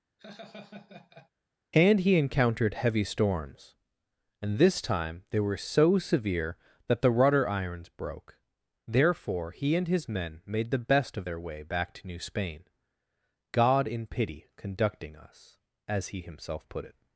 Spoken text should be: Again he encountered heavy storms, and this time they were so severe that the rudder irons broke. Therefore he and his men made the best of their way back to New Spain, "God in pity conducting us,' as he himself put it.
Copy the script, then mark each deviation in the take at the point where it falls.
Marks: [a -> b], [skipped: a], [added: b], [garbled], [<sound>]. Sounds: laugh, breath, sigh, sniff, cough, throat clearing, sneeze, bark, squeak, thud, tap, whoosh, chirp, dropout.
[laugh] [Again -> And] he encountered heavy storms, and this time they were so severe that the rudder irons broke. Therefore he and his men made the best of their way back to New Spain, "God in pity conducting us,' as he himself put it.